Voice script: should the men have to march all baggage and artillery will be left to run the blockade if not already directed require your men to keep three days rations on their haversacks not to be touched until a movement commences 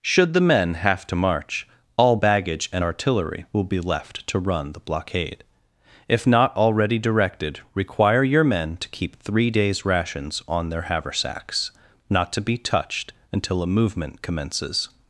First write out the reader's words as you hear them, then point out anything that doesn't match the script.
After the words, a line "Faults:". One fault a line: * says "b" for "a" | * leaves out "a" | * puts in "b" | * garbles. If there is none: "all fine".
should the men have to march all baggage and artillery will be left to run the blockade if not already directed require your men to keep three days rations on their haversacks not to be touched until a movement commences
Faults:
all fine